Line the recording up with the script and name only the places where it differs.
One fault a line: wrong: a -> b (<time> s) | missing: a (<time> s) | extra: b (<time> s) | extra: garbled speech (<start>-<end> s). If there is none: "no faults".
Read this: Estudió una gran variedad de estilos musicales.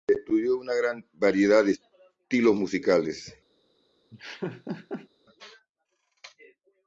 no faults